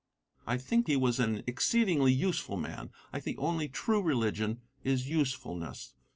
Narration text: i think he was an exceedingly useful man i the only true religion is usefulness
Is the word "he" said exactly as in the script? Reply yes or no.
yes